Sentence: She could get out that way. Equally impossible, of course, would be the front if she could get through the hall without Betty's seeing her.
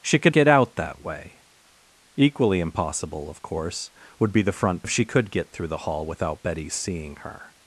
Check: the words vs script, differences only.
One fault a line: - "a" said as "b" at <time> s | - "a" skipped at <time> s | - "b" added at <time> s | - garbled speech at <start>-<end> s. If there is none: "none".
none